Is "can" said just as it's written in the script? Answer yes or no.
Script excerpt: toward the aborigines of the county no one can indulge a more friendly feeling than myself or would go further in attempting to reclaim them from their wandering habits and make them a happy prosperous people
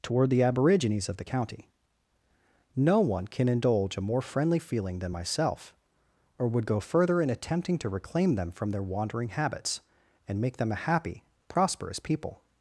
yes